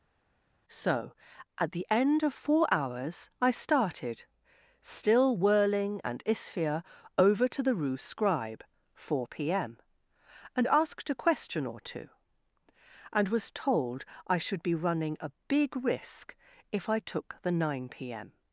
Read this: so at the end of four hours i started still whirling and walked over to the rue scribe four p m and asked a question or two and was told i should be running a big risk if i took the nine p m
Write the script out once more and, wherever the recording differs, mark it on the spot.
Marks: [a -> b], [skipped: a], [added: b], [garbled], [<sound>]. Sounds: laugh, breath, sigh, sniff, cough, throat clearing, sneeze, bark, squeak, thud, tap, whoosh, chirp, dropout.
so at the end of four hours i started still whirling and [walked -> isphere] over to the rue scribe four p m and asked a question or two and was told i should be running a big risk if i took the nine p m